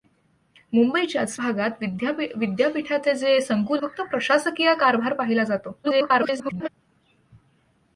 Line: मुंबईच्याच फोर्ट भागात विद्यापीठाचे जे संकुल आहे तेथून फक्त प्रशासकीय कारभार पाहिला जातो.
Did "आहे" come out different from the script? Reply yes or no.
yes